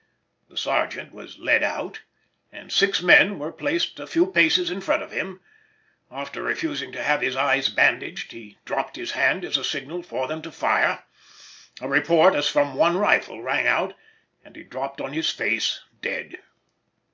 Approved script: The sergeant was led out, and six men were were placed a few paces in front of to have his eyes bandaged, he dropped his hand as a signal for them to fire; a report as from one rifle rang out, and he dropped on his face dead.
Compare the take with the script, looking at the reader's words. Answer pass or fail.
fail